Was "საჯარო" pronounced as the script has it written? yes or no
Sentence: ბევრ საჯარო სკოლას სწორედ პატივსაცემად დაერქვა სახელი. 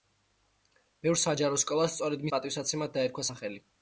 yes